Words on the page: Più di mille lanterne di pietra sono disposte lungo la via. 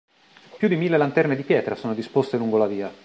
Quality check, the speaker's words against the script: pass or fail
pass